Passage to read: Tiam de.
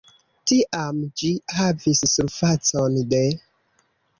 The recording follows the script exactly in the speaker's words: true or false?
false